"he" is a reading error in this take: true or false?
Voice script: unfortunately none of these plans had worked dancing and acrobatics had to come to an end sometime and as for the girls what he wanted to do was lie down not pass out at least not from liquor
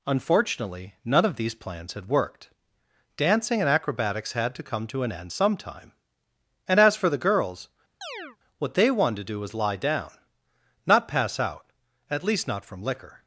true